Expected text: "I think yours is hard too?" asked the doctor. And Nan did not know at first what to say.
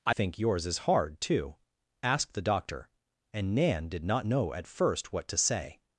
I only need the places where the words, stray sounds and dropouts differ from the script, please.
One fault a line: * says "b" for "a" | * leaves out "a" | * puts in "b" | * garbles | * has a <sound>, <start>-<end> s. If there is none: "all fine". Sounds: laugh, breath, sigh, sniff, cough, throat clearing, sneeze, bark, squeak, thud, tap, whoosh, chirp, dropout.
all fine